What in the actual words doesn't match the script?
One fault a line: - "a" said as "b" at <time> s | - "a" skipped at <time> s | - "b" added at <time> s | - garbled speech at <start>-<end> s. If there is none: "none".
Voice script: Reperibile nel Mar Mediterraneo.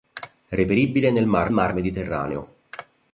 - "Mar" added at 1.5 s